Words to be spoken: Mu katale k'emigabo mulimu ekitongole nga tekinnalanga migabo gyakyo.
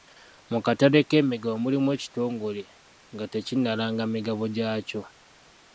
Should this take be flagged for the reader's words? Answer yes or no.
no